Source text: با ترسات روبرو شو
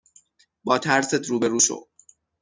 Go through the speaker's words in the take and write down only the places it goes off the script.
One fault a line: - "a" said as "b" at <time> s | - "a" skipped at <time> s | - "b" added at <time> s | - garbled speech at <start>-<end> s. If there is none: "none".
none